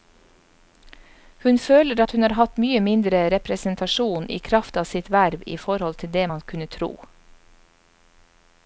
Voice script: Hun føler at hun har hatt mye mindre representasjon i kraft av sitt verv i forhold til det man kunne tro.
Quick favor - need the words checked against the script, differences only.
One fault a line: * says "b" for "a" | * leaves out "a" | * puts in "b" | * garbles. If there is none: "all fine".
all fine